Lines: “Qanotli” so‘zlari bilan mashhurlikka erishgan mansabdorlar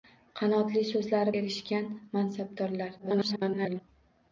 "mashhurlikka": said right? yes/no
no